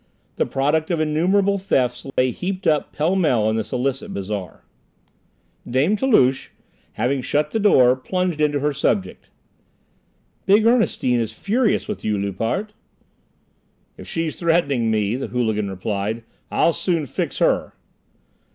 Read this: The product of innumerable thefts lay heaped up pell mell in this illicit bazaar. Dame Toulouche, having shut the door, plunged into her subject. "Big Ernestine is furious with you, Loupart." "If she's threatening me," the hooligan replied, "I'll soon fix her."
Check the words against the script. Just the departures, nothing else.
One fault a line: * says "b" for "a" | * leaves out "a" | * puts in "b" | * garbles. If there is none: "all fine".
all fine